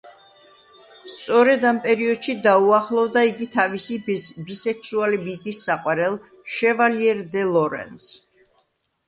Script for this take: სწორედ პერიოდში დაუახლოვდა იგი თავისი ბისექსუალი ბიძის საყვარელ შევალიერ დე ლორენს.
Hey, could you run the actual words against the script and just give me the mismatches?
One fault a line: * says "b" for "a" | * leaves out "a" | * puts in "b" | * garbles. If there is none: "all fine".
* puts in "ამ"